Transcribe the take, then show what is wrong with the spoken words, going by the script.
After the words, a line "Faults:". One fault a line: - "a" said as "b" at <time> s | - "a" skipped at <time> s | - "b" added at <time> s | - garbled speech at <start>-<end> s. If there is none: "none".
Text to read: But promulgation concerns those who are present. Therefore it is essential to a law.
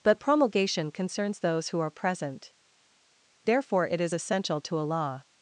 But promulgation concerns those who are present. Therefore it is essential to a law.
Faults:
none